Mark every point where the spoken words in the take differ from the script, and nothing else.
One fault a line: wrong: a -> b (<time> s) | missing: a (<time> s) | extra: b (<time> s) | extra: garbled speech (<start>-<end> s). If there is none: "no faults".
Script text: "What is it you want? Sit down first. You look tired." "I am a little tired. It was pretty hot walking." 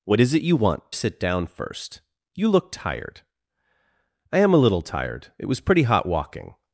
no faults